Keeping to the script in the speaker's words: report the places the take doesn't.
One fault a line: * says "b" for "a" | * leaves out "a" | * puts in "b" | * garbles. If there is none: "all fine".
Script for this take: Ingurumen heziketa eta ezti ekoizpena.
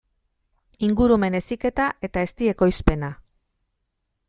all fine